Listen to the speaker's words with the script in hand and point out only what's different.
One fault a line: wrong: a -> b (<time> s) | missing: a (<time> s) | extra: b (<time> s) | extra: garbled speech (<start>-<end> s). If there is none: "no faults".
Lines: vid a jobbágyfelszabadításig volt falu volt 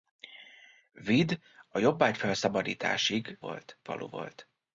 no faults